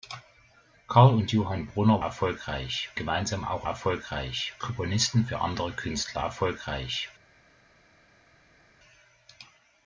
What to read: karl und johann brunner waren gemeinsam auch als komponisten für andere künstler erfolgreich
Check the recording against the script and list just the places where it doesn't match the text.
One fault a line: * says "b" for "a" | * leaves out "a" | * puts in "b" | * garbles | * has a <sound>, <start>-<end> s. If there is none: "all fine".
* says "erfolgreich" for "waren"
* says "erfolgreich" for "als"